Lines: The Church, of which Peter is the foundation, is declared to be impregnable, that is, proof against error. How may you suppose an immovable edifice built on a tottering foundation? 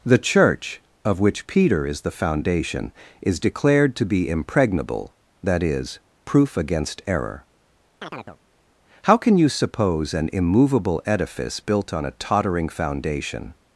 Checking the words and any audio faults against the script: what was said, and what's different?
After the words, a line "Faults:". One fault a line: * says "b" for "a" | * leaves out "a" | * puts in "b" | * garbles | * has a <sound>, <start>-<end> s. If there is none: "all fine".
The Church, of which Peter is the foundation, is declared to be impregnable, that is, proof against error. How can you suppose an immovable edifice built on a tottering foundation?
Faults:
* has a chirp, 8.0-8.4 s
* says "can" for "may"